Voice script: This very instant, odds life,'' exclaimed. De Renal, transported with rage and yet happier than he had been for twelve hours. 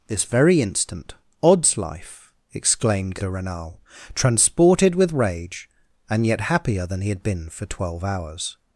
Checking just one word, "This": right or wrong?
right